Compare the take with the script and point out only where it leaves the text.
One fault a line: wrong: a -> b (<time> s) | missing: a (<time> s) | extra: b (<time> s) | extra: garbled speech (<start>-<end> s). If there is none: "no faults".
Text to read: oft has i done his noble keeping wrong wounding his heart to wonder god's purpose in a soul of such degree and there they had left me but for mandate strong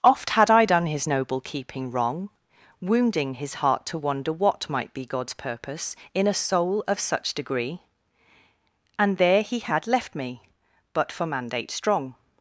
wrong: has -> had (0.3 s)
extra: what might be (4.3 s)
wrong: they -> he (9.4 s)